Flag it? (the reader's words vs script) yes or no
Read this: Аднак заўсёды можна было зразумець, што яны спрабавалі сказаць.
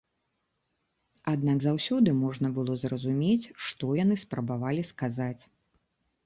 no